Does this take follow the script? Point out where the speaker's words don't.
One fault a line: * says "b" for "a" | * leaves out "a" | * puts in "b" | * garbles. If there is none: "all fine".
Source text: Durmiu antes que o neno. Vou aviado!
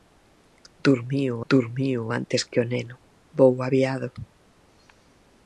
* puts in "durmiu"